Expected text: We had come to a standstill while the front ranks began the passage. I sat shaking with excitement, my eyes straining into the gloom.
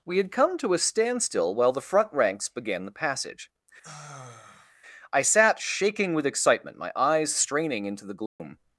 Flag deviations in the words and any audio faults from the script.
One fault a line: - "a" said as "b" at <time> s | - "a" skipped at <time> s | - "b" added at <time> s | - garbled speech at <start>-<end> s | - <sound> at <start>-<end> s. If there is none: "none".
- sigh at 3.8-4.7 s
- dropout at 8.3-8.4 s